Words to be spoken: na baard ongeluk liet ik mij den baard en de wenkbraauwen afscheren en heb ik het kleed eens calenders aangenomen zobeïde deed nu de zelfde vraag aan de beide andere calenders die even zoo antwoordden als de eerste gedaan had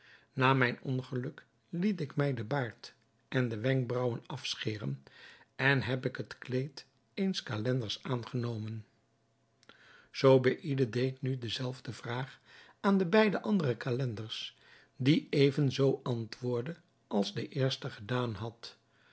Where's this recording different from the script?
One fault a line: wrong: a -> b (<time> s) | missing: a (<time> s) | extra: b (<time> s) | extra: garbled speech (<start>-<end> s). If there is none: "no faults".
wrong: baard -> mijn (0.5 s)